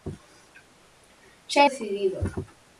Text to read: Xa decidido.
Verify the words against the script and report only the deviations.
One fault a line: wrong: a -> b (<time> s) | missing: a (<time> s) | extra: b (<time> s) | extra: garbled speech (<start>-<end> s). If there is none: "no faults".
no faults